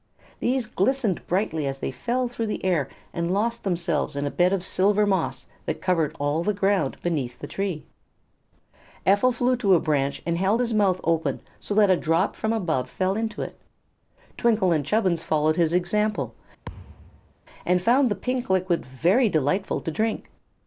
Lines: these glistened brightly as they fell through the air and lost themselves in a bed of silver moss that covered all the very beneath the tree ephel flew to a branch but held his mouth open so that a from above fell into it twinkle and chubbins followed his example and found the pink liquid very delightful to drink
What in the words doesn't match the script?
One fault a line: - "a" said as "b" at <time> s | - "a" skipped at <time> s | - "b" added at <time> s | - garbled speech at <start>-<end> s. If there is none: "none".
- "very" said as "ground" at 6.5 s
- "but" said as "and" at 10.3 s
- "drop" added at 12.0 s